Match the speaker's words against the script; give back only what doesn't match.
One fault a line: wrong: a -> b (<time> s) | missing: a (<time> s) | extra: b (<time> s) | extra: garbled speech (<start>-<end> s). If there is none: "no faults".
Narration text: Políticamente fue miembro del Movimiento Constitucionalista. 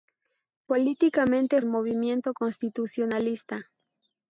missing: fue miembro del (1.6 s)